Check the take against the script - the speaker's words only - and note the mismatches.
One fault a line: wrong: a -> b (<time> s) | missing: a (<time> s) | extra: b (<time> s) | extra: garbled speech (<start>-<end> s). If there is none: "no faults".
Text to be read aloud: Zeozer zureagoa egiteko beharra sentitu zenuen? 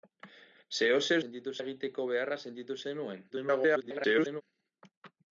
wrong: zureagoa -> sentitu (1.2 s)
extra: garbled speech (3.3-4.4 s)